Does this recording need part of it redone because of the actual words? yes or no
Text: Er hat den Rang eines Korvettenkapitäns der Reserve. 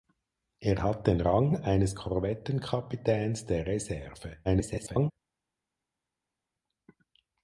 yes